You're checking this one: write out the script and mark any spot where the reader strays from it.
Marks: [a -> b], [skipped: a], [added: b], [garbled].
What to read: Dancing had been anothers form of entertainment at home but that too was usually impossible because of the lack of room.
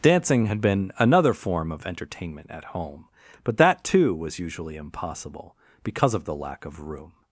Dancing had been [anothers -> another] form of entertainment at home but that too was usually impossible because of the lack of room.